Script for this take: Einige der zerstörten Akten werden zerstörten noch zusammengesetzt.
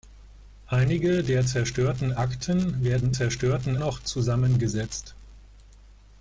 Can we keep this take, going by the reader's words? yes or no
yes